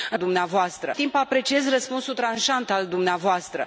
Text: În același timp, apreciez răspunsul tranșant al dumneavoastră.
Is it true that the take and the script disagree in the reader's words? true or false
true